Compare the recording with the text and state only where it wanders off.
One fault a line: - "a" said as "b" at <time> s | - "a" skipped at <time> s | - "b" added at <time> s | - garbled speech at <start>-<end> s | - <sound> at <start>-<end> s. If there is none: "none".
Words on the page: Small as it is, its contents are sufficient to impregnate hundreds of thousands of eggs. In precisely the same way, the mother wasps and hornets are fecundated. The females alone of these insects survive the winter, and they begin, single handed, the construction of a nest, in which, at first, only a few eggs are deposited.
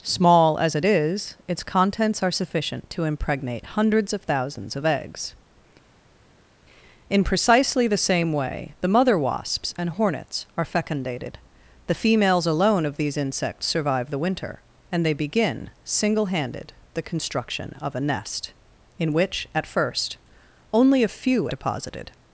- "eggs are" skipped at 21.5 s